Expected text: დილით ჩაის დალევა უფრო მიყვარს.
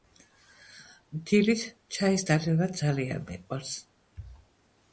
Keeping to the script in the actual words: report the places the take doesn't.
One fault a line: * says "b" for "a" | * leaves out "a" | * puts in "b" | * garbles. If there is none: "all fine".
* says "ძალიან" for "უფრო"